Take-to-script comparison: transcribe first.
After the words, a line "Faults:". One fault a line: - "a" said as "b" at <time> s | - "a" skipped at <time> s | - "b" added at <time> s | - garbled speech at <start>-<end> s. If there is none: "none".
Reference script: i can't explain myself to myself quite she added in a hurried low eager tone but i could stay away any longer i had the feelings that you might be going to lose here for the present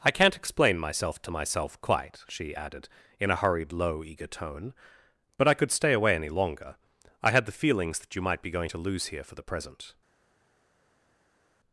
i can't explain myself to myself quite she added in a hurried low eager tone but i could stay away any longer i had the feelings that you might be going to lose here for the present
Faults:
none